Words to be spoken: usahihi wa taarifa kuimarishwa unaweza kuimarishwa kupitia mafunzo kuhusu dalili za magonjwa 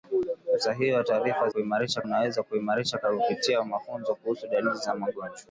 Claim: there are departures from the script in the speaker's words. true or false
false